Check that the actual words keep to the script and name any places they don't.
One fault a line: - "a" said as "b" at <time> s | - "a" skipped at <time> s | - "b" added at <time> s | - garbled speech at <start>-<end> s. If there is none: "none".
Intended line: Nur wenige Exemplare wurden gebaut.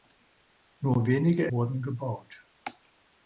- "Exemplare" skipped at 1.5 s